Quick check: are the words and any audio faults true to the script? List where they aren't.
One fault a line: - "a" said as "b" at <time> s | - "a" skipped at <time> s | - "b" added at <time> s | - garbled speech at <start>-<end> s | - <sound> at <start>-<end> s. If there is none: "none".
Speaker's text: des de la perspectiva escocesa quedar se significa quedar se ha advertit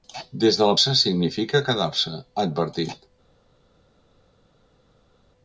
- "perspectiva escocesa quedar" skipped at 0.8 s